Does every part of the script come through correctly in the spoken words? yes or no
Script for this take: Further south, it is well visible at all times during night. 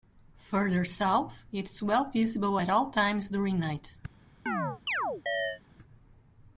yes